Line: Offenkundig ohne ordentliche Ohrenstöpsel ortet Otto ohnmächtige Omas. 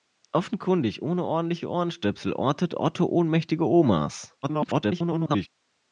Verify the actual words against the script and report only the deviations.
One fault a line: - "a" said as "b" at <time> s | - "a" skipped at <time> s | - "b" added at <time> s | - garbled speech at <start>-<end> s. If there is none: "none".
- garbled speech at 4.4-5.5 s